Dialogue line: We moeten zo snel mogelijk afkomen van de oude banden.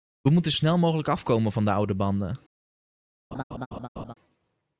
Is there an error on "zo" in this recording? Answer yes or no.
yes